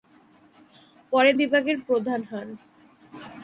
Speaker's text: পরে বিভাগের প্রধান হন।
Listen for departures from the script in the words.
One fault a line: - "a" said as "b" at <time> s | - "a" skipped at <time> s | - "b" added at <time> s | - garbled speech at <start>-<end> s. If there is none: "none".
none